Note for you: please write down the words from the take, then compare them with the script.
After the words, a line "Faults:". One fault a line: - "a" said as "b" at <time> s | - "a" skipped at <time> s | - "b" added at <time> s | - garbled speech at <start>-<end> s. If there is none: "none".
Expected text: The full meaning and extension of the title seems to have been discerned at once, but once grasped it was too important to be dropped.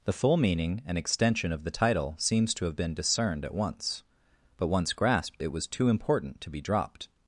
The full meaning and extension of the title seems to have been discerned at once, but once grasped it was too important to be dropped.
Faults:
none